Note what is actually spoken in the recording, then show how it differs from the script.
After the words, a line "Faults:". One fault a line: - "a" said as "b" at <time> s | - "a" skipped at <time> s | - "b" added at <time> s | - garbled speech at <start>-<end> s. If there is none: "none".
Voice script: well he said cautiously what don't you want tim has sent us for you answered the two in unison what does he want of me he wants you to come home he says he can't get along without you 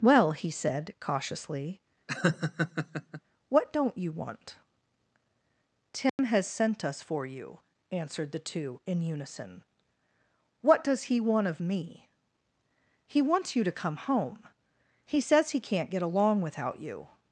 well he said cautiously what don't you want tim has sent us for you answered the two in unison what does he want of me he wants you to come home he says he can't get along without you
Faults:
none